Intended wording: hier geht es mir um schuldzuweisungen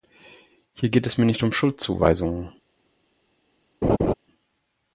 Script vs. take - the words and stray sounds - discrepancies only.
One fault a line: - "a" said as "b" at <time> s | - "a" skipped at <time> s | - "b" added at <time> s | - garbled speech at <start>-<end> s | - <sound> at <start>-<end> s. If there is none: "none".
- "nicht" added at 1.2 s
- laugh at 3.8-4.1 s